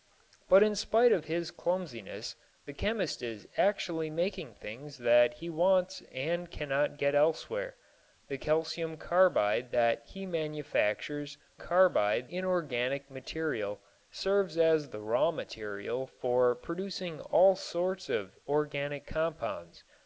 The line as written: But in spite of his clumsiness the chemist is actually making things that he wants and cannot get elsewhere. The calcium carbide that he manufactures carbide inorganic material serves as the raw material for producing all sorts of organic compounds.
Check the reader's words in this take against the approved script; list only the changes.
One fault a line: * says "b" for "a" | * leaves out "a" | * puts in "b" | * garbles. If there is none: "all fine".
all fine